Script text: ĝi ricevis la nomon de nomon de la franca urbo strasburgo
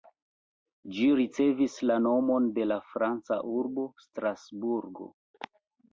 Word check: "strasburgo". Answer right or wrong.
right